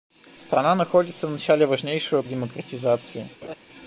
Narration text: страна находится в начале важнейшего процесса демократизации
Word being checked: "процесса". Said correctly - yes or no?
no